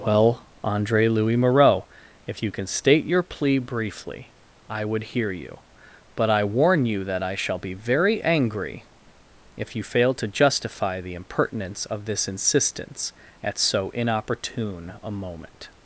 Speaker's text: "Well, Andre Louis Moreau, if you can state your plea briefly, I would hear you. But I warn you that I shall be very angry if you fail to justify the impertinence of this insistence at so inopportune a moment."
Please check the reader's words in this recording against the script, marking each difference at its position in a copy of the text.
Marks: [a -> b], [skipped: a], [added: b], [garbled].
"Well, Andre Louis Moreau, if you can state your plea briefly, I would hear you. But I warn you that I shall be very angry if you fail to justify the impertinence of this insistence at so inopportune a moment."